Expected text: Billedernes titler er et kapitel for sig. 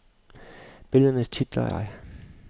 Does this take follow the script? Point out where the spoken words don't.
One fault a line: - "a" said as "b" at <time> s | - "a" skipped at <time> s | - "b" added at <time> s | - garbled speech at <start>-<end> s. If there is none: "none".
- "et kapitel for" skipped at 1.7 s